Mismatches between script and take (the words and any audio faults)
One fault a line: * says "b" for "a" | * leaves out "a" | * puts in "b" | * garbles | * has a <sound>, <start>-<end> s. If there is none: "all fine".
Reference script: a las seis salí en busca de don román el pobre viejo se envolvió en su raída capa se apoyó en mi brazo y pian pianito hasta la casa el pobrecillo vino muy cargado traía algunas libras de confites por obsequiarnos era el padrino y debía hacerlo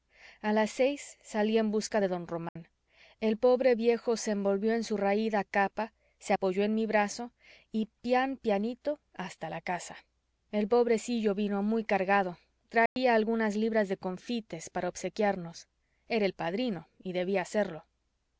* has a dropout, 2.5-2.6 s
* has a dropout, 12.9-13.0 s
* says "para" for "por"